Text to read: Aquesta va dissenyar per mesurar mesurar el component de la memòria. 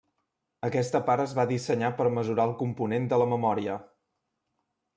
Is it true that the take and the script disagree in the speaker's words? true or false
true